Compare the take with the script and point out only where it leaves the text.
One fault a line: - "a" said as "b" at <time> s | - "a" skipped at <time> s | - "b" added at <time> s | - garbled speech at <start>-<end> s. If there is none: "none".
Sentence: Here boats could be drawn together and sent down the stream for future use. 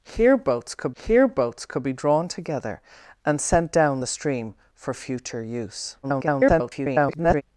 - "here boats could" added at 0.9 s
- garbled speech at 6.0-7.4 s